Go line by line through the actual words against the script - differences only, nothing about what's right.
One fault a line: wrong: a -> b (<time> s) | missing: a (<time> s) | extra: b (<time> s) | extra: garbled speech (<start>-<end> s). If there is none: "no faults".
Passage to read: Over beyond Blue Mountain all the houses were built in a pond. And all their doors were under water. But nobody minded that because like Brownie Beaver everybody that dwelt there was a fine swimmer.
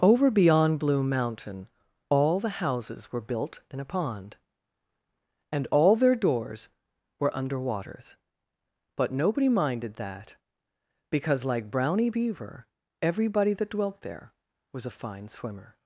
wrong: water -> waters (7.6 s)